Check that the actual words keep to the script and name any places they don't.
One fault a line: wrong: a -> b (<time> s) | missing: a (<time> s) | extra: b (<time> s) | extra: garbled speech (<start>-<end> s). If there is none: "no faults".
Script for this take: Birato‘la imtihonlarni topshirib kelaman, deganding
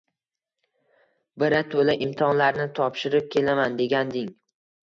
no faults